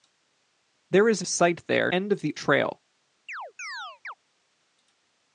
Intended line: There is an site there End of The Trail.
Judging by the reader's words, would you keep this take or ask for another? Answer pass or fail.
pass